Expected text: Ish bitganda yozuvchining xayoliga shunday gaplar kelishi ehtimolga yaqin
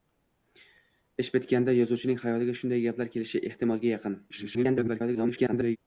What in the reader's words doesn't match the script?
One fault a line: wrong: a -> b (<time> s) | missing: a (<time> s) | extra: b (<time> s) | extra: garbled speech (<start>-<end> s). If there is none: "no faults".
extra: garbled speech (4.3-5.8 s)